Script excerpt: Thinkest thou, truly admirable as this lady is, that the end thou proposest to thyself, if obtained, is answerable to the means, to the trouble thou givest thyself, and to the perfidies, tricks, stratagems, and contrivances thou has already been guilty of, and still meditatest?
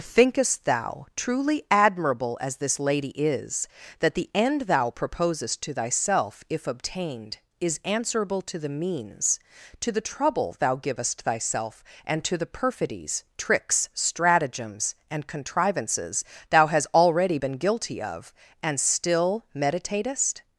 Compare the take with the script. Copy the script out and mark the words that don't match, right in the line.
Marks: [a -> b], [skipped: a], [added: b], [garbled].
Thinkest thou, truly admirable as this lady is, that the end thou proposest to thyself, if obtained, is answerable to the means, to the trouble thou givest thyself, and to the perfidies, tricks, stratagems, and contrivances thou [has -> hast] already been guilty of, and still meditatest?